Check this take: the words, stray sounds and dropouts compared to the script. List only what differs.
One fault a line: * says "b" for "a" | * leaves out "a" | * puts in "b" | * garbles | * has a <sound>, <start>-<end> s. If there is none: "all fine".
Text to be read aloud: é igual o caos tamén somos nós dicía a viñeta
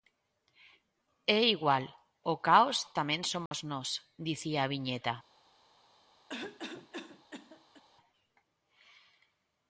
* has a dropout, 3.5-3.5 s
* has a cough, 6.3-7.8 s